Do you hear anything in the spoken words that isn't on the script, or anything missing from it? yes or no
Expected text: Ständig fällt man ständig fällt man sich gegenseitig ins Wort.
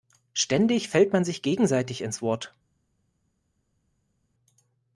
yes